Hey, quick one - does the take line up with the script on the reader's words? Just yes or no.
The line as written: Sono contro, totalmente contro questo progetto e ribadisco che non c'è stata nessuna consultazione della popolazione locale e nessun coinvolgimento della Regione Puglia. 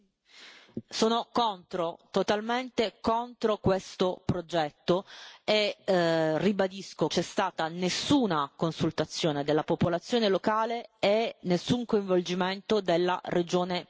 no